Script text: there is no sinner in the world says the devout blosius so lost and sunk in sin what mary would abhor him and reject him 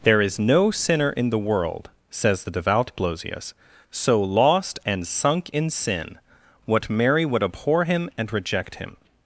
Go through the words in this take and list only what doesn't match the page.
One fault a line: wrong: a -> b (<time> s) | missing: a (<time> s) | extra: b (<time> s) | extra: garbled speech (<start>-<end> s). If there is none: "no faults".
no faults